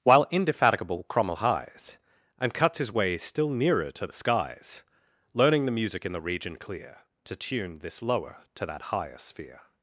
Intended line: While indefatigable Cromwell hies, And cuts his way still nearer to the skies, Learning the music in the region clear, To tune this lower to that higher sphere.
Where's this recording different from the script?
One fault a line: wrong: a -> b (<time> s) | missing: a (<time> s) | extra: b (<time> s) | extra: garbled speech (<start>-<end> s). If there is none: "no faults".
no faults